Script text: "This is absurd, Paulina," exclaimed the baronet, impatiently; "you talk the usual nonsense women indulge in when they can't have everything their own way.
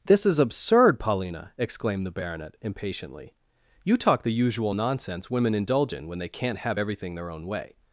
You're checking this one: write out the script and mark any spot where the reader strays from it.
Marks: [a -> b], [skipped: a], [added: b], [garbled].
"This is absurd, Paulina," exclaimed the baronet, impatiently; "you talk the usual nonsense women indulge in when they can't have everything their own way.